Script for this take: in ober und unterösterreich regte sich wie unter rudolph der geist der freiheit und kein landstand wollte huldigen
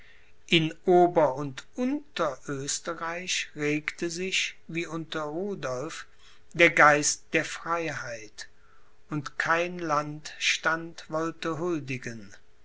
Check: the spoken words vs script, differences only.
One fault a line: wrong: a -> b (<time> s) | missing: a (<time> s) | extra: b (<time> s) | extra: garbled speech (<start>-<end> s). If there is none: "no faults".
no faults